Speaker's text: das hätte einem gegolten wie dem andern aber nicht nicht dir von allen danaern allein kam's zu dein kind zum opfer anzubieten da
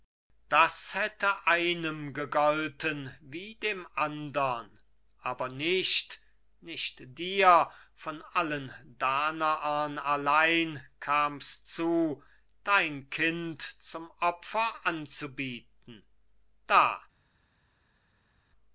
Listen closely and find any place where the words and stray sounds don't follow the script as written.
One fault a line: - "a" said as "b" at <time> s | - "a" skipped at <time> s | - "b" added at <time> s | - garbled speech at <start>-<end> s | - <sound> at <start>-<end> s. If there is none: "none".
none